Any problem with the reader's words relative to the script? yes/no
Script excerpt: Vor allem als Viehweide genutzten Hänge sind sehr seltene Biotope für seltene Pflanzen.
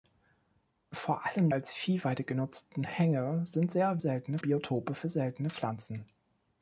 no